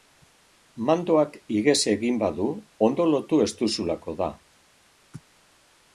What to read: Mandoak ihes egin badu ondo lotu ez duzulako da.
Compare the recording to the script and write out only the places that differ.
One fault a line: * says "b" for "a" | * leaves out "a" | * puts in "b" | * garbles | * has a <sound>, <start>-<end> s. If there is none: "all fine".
all fine